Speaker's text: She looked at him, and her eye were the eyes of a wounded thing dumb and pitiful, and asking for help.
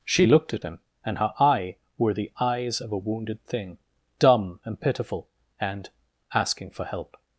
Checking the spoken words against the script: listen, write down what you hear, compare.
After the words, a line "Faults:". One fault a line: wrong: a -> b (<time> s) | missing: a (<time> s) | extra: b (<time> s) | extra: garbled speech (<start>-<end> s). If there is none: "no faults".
She looked at him, and her eye were the eyes of a wounded thing dumb and pitiful, and asking for help.
Faults:
no faults